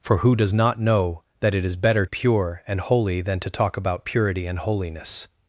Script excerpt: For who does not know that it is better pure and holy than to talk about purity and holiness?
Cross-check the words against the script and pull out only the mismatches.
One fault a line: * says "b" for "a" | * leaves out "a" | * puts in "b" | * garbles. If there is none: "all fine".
all fine